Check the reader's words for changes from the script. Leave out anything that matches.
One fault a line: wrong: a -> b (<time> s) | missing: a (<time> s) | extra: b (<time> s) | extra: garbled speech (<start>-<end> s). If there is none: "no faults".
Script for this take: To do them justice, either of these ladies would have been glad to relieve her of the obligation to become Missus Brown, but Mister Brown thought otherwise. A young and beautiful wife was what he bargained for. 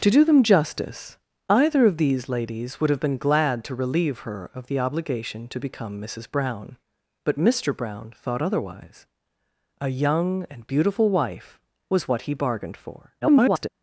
extra: garbled speech (13.2-13.7 s)